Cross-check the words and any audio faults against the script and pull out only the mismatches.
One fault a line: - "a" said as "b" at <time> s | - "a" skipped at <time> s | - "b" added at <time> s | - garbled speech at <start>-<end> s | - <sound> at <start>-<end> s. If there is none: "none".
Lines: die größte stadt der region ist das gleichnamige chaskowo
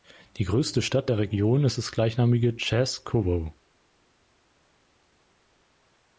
none